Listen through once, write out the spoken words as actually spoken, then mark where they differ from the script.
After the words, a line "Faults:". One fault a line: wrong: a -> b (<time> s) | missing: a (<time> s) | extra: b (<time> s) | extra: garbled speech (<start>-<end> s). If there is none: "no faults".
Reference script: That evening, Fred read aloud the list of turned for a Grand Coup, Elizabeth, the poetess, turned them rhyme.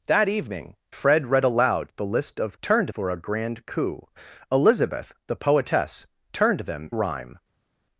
That evening, Fred read aloud the list of turned for a Grand Coup, Elizabeth, the poetess, turned them rhyme.
Faults:
no faults